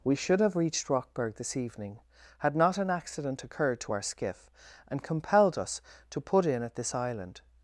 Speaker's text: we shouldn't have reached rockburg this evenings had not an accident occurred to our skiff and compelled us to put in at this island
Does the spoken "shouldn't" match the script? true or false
false